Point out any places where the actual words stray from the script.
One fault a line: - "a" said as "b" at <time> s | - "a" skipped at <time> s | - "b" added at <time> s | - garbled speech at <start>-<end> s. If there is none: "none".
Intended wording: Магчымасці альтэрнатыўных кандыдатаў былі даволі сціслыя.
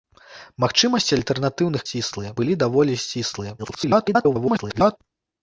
- "кандыдатаў" said as "сціслыя" at 1.9 s
- garbled speech at 3.6-5.0 s